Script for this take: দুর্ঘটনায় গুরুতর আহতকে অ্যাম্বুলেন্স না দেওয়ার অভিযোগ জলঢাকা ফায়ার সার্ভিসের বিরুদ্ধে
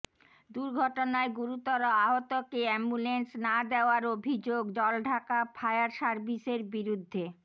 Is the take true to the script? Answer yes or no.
yes